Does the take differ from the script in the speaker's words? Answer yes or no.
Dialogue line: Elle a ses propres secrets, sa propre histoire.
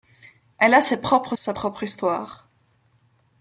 yes